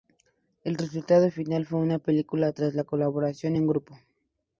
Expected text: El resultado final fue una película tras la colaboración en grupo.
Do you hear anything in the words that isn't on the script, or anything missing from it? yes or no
no